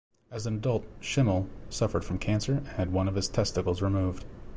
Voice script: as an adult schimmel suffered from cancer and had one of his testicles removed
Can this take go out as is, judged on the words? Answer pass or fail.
pass